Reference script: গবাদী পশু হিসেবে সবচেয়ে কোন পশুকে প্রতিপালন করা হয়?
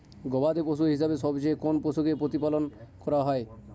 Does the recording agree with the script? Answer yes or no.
yes